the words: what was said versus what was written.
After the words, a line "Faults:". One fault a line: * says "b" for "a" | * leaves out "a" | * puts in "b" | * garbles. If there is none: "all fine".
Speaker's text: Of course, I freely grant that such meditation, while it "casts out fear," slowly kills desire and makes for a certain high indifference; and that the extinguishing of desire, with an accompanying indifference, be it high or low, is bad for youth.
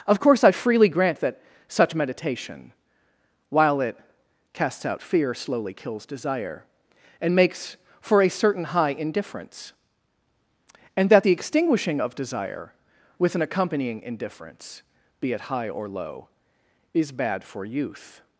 Of course, I freely grant that such meditation, while it "casts out fear," slowly kills desire and makes for a certain high indifference; and that the extinguishing of desire, with an accompanying indifference, be it high or low, is bad for youth.
Faults:
all fine